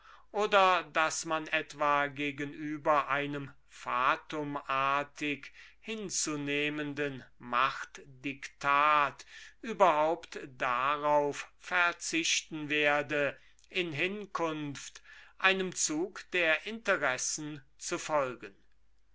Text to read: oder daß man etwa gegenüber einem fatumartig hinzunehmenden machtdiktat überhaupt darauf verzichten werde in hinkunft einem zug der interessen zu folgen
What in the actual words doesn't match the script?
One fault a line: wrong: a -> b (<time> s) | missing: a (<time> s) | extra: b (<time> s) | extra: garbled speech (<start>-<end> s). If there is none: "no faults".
no faults